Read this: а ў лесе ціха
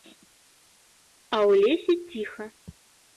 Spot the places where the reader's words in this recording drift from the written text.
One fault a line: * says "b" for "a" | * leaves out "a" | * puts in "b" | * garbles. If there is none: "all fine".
all fine